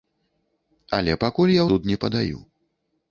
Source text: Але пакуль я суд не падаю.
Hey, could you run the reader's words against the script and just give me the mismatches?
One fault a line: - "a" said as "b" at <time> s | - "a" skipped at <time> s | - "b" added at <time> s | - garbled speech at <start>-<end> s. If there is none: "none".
none